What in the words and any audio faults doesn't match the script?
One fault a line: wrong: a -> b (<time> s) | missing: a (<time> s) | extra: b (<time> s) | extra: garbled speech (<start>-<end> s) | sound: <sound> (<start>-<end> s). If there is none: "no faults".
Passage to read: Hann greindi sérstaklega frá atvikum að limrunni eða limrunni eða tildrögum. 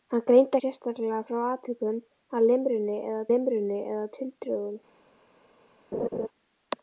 sound: laugh (5.9-6.3 s)